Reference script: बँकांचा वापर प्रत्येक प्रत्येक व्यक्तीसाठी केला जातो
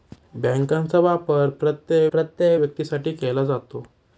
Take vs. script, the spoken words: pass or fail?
pass